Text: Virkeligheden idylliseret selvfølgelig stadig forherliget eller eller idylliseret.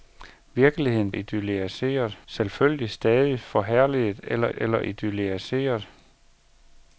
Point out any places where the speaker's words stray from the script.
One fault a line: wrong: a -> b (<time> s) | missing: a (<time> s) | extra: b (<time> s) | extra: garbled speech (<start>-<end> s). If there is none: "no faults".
no faults